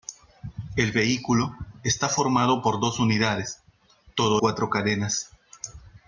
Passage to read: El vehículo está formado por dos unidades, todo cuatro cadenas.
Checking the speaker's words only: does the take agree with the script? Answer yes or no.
yes